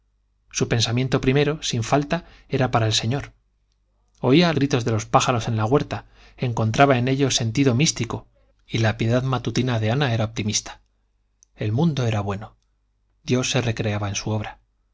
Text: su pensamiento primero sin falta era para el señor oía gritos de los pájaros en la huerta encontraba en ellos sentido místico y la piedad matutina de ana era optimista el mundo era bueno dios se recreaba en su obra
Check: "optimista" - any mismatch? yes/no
no